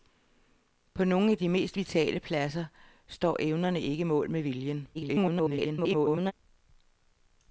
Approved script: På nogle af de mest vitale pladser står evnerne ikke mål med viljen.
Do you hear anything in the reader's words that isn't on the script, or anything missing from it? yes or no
yes